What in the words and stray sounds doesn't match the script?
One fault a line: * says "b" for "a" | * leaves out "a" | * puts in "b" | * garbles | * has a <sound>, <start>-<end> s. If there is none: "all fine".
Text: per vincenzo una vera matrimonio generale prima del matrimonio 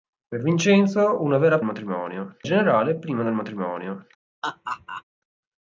* has a laugh, 4.4-5.0 s